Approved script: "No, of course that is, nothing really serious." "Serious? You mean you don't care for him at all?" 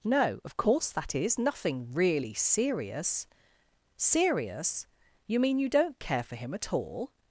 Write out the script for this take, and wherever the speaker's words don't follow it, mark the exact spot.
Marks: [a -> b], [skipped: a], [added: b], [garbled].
"No, of course that is, nothing really serious." "Serious? You mean you don't care for him at all?"